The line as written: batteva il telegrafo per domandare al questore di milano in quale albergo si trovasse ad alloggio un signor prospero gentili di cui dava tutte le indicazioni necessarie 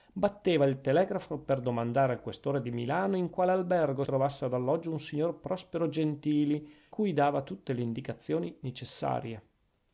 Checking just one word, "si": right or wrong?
wrong